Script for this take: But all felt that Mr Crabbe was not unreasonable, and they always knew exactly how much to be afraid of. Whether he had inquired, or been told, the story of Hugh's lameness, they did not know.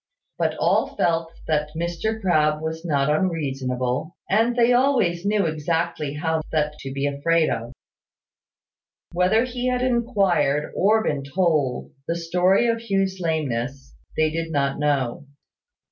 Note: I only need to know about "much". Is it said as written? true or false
false